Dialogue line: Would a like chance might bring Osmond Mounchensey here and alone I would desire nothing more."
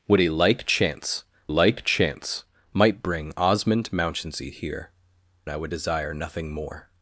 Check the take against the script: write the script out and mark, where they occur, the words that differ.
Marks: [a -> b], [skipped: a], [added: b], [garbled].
Would a like chance [added: like chance] might bring Osmond Mounchensey here [skipped: and alone] I would desire nothing more."